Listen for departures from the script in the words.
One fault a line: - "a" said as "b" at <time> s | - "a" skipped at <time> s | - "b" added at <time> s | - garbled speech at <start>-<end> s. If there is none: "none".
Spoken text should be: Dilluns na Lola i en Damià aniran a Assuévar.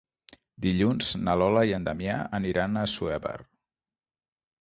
none